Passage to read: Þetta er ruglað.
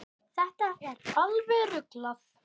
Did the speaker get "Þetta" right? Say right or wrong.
right